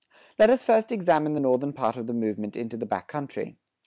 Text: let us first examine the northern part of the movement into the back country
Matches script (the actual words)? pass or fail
pass